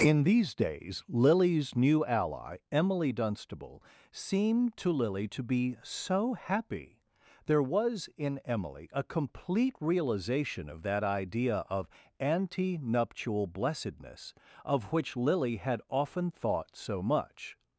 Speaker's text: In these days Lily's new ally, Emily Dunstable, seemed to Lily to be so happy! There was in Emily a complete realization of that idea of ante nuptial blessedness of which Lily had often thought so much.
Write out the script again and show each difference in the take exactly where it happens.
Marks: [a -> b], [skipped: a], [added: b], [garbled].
In these days Lily's new ally, Emily Dunstable, seemed to Lily to be so happy! There was in Emily a complete realization of that idea of ante nuptial blessedness of which Lily had often thought so much.